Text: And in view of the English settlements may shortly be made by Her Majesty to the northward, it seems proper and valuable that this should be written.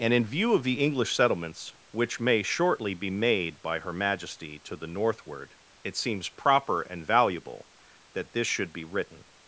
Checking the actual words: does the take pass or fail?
fail